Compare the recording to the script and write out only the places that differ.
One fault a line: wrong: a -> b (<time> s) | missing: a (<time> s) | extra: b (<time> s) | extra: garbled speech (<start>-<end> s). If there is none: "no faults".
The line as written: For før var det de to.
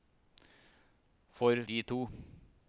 missing: før var det (1.6 s)